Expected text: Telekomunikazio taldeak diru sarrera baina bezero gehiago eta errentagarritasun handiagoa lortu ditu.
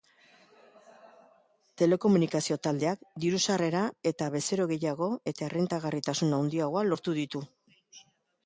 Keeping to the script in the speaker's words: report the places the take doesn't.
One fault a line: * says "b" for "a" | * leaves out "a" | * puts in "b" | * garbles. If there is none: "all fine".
* says "eta" for "baina"